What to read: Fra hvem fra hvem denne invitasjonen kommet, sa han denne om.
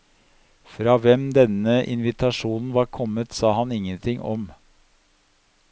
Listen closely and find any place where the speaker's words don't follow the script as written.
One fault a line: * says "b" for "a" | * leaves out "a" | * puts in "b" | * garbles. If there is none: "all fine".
* leaves out "fra hvem"
* puts in "var"
* says "ingenting" for "denne"